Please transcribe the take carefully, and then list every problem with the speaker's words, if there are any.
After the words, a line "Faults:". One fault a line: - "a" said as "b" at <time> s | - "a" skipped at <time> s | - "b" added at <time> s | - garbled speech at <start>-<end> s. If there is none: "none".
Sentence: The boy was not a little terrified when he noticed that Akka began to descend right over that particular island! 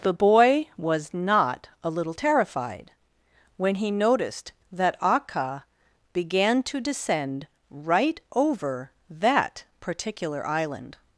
The boy was not a little terrified when he noticed that Akka began to descend right over that particular island!
Faults:
none